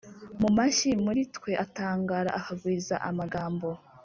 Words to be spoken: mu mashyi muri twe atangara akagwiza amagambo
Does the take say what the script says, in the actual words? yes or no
yes